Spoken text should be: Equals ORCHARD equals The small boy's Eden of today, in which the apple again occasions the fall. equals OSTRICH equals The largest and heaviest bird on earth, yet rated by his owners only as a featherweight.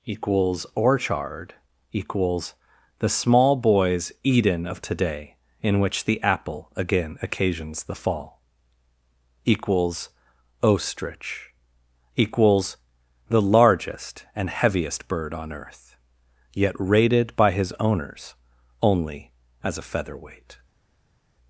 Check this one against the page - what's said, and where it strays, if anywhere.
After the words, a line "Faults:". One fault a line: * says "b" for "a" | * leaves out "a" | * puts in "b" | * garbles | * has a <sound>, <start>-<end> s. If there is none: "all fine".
Equals ORCHARD equals The small boy's Eden of today, in which the apple again occasions the fall. equals OSTRICH equals The largest and heaviest bird on earth, yet rated by his owners only as a featherweight.
Faults:
all fine